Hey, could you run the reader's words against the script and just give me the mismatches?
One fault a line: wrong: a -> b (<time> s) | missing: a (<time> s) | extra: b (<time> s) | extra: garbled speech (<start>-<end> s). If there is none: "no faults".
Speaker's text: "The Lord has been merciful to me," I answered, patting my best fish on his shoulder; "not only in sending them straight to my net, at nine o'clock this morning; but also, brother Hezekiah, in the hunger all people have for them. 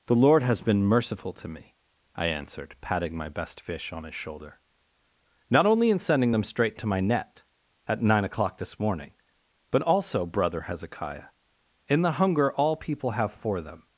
no faults